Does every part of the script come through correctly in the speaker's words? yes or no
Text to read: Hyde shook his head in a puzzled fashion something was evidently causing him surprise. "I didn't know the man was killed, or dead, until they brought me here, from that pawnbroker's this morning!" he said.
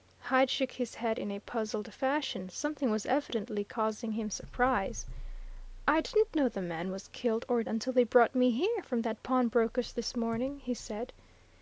no